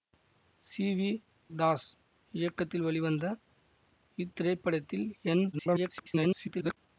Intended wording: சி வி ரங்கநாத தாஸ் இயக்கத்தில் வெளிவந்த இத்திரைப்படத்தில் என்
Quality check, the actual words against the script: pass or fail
fail